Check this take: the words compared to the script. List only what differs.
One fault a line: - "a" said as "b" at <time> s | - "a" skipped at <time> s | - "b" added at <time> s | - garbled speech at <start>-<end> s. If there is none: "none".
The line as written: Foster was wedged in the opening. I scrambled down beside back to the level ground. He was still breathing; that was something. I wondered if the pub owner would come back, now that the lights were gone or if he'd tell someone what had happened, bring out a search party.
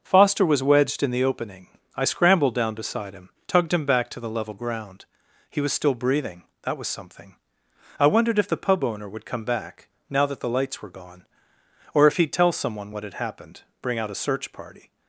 - "him tugged him" added at 3.1 s